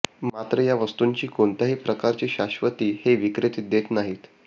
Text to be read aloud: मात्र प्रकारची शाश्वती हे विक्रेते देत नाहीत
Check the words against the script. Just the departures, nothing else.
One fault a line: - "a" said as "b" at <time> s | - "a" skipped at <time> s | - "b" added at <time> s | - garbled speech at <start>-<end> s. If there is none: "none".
- "या वस्तूंची कोणत्याही" added at 0.6 s